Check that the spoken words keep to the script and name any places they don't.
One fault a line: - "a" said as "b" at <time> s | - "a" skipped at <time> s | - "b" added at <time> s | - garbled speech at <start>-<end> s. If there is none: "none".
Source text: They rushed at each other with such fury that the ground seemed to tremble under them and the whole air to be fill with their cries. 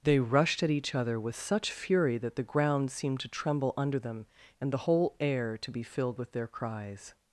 - "fill" said as "filled" at 5.8 s